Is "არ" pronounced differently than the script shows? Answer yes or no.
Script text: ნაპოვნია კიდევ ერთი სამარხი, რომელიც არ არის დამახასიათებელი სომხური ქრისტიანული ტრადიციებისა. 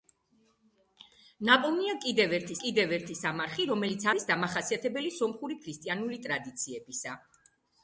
yes